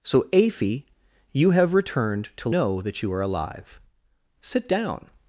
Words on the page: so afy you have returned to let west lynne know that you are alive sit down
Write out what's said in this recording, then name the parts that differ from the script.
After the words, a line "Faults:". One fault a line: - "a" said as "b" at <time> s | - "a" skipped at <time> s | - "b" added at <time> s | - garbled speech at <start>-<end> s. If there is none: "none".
so afy you have returned to know that you are alive sit down
Faults:
- "let west lynne" skipped at 2.5 s